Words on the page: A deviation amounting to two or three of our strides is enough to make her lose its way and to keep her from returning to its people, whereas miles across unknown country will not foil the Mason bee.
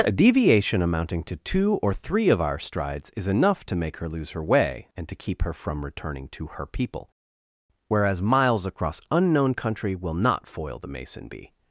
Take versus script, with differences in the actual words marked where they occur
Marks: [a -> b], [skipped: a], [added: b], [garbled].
A deviation amounting to two or three of our strides is enough to make her lose [its -> her] way and to keep her from returning to [its -> her] people, whereas miles across unknown country will not foil the Mason bee.